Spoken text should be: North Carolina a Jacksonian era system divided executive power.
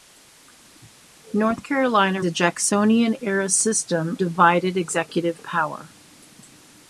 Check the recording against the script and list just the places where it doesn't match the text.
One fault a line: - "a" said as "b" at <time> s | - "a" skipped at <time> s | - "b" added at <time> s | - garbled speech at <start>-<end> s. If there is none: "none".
none